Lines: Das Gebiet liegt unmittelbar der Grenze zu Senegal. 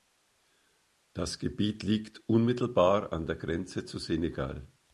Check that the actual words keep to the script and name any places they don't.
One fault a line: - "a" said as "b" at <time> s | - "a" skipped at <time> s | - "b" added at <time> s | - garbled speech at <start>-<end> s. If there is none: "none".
- "an" added at 3.1 s